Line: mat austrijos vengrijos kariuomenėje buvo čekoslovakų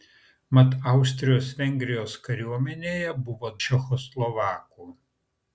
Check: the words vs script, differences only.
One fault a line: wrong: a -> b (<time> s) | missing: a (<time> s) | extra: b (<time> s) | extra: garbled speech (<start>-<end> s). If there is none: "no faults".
no faults